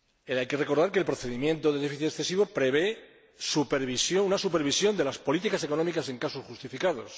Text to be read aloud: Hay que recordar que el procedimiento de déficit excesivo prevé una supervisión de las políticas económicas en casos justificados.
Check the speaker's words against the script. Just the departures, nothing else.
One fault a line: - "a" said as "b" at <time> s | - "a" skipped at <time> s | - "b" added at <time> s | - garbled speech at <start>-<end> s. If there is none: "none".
none